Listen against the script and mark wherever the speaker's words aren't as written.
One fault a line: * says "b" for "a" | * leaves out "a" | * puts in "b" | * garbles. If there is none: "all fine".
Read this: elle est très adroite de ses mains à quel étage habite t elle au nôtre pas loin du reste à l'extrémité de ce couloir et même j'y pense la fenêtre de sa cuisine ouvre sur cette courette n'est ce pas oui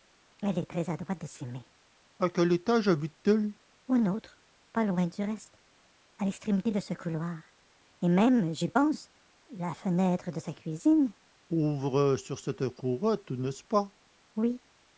all fine